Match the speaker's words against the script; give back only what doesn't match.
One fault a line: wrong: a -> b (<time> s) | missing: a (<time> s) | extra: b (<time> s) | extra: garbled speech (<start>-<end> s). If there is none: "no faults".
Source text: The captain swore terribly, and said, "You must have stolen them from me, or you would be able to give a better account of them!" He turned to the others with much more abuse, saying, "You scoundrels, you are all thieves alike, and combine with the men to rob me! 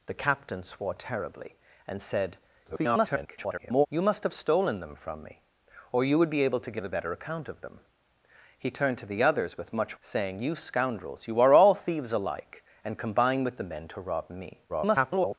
extra: garbled speech (2.6-3.9 s)
missing: more abuse (10.0 s)
extra: garbled speech (14.7-15.4 s)